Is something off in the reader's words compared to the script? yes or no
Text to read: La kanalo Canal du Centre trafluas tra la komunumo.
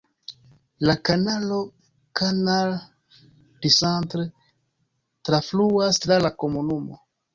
no